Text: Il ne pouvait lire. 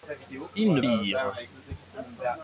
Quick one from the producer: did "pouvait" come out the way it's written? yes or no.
no